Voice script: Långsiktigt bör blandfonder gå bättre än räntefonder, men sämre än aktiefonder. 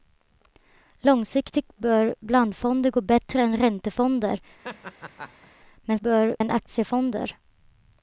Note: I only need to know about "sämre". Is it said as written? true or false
false